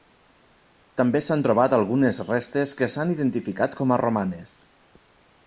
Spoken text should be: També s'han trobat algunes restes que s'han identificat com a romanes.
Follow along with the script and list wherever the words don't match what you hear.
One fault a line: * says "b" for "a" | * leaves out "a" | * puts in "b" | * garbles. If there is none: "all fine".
all fine